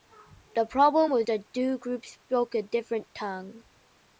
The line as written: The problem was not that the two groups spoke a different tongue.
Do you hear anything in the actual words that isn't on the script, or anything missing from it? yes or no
yes